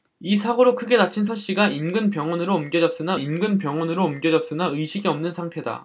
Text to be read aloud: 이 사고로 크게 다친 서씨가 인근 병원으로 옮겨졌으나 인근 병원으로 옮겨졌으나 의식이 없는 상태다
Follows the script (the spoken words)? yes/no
yes